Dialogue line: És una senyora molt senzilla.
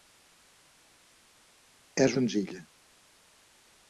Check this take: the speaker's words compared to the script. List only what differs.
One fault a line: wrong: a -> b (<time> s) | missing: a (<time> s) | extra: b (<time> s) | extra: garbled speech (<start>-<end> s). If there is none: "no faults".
missing: una senyora molt (2.1 s)